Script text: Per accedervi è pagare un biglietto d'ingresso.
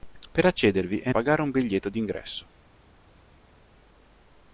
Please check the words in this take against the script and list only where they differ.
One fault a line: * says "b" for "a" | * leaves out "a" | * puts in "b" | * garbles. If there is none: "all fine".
all fine